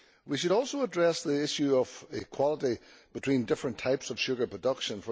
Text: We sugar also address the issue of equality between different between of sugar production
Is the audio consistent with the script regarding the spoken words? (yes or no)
no